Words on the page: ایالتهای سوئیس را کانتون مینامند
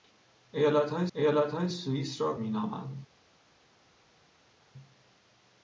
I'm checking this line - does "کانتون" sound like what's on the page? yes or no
no